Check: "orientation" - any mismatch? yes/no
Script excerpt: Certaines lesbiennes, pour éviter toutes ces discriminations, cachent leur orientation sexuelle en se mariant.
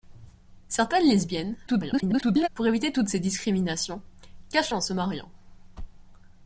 yes